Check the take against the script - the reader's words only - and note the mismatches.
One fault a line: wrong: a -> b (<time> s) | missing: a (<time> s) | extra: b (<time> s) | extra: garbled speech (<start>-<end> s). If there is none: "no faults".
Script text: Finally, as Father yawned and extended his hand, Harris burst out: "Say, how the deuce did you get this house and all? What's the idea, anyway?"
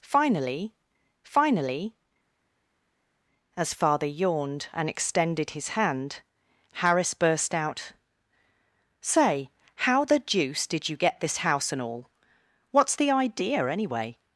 extra: finally (1.2 s)